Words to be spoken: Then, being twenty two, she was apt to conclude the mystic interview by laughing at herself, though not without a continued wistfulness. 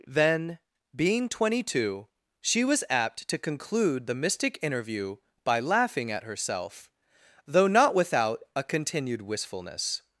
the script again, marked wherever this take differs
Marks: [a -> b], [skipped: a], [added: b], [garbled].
Then, being twenty two, she was apt to conclude the mystic interview by laughing at herself, though not without a continued wistfulness.